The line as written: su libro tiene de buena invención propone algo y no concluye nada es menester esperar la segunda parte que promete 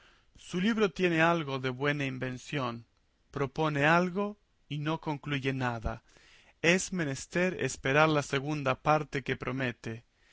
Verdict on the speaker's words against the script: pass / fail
fail